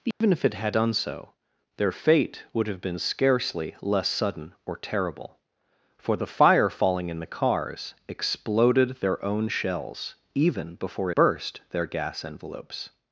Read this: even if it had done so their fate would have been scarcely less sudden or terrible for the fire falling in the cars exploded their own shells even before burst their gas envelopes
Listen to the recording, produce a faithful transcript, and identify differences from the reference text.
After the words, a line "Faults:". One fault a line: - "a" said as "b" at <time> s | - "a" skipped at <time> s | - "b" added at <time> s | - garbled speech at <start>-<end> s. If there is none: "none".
even if it had done so their fate would have been scarcely less sudden or terrible for the fire falling in the cars exploded their own shells even before burst their gas envelopes
Faults:
none